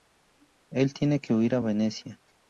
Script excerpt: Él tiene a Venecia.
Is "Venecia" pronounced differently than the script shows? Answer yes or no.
no